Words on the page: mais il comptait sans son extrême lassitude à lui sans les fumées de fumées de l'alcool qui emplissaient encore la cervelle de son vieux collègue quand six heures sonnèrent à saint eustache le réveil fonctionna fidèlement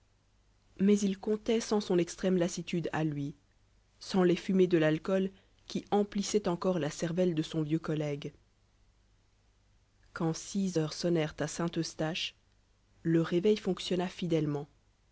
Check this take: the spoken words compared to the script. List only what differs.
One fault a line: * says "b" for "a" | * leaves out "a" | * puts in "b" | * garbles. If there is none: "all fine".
* leaves out "fumées de"